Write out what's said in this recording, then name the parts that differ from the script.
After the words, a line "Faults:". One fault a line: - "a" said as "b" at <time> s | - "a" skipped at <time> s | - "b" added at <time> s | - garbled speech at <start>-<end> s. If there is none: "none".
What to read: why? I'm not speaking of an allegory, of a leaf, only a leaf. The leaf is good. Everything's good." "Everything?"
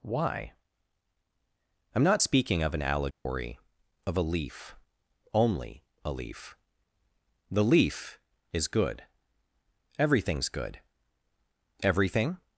why? I'm not speaking of an allegory, of a leaf, only a leaf. The leaf is good. Everything's good." "Everything?"
Faults:
none